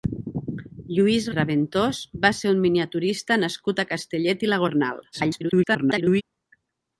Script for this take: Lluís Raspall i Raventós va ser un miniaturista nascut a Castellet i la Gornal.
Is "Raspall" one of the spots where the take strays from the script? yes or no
yes